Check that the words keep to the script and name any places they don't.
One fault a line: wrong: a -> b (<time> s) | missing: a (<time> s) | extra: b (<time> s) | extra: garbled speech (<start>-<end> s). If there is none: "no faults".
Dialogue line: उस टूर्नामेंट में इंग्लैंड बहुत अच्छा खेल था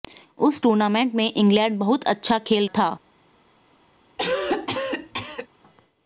no faults